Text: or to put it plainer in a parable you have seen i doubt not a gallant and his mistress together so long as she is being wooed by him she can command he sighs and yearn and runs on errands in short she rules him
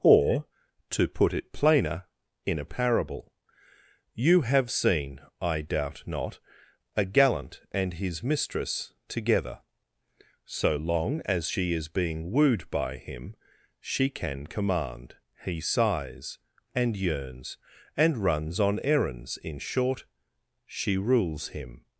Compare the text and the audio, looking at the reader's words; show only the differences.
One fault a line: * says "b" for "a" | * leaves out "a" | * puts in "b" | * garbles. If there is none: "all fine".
* says "yearns" for "yearn"